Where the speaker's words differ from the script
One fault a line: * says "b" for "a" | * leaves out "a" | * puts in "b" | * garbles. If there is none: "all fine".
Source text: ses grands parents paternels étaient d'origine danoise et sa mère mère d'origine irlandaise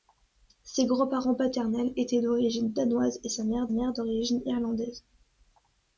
all fine